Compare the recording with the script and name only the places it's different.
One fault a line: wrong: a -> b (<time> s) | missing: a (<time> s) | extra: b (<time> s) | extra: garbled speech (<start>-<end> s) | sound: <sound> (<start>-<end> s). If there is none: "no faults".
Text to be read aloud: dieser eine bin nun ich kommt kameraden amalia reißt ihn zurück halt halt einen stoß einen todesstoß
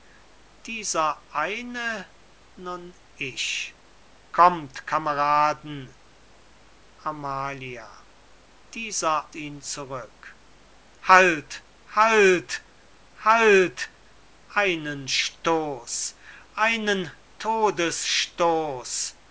missing: bin (2.1 s)
wrong: reißt -> dieser (8.7 s)
extra: halt (13.2 s)